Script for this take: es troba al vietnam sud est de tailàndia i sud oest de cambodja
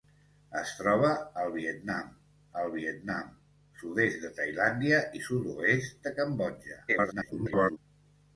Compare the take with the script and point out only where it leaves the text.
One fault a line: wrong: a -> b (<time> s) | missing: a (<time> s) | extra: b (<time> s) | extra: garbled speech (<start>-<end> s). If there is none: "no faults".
extra: al vietnam (2.6 s)
extra: garbled speech (6.9-7.8 s)